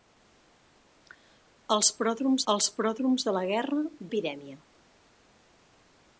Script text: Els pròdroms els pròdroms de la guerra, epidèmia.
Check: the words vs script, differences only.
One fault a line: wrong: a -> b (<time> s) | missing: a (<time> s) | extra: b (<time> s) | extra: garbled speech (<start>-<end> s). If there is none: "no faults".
no faults